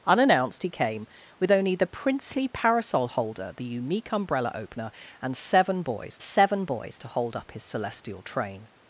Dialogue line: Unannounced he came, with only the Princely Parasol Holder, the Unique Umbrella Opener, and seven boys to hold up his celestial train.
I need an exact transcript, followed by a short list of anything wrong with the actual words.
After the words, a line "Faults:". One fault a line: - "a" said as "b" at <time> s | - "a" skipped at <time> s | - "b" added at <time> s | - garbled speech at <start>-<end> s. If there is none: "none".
Unannounced he came, with only the Princely Parasol Holder, the Unique Umbrella Opener, and seven boys seven boys to hold up his celestial train.
Faults:
- "seven boys" added at 6.2 s